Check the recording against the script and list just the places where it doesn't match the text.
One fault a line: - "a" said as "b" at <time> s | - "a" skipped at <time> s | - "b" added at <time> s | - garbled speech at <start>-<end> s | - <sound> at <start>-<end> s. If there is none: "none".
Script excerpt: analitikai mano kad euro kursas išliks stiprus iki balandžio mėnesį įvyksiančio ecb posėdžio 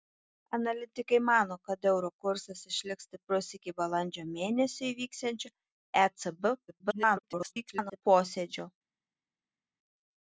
- garbled speech at 6.7-8.0 s